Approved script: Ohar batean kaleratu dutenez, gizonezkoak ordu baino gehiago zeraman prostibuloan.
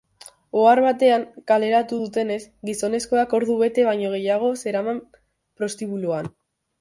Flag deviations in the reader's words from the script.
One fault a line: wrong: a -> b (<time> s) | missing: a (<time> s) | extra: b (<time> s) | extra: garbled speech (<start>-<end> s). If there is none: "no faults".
extra: bete (3.6 s)